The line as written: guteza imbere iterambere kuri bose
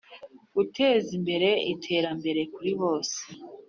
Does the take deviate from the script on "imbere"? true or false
false